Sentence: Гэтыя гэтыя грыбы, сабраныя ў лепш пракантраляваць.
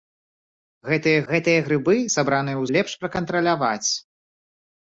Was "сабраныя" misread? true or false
false